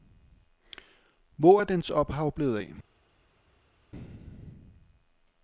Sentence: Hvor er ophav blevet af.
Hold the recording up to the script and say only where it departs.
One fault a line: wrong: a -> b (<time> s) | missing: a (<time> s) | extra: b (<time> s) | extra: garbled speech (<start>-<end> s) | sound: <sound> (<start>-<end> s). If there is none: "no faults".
extra: dens (1.6 s)